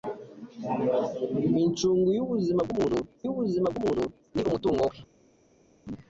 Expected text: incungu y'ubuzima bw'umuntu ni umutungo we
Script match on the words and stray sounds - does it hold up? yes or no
no